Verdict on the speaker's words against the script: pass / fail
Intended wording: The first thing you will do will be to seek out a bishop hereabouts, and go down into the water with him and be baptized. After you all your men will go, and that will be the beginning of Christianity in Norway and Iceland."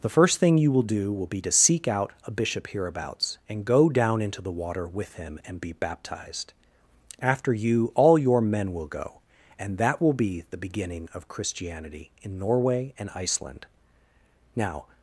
fail